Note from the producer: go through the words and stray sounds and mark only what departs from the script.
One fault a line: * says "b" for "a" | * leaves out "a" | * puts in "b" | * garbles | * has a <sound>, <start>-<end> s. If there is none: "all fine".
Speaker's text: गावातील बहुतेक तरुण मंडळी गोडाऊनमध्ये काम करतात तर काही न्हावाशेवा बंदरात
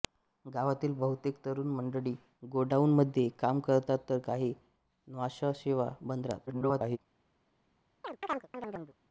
* garbles
* has a chirp, 8.0-8.9 s